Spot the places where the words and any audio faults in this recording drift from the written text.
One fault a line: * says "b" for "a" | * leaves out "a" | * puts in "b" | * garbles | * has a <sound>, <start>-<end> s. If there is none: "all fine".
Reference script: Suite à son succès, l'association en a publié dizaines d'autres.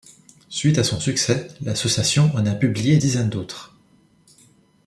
all fine